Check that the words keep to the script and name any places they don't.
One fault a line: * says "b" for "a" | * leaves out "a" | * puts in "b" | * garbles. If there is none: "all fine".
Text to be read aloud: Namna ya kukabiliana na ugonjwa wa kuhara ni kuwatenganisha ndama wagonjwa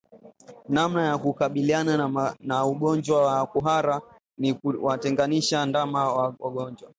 all fine